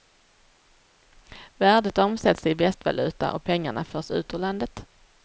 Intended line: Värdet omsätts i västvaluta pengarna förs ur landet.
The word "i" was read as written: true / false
true